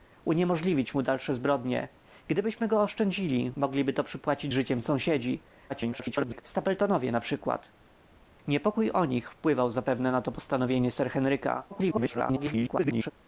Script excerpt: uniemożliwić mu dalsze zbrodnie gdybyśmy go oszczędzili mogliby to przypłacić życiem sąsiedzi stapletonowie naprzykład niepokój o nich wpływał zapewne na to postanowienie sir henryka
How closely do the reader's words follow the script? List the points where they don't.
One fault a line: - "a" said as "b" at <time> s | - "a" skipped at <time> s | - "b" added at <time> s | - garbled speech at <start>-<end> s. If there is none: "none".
- garbled speech at 5.7-6.4 s
- garbled speech at 11.7-13.1 s